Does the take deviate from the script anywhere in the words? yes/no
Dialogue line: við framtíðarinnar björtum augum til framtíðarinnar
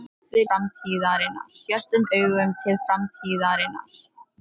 no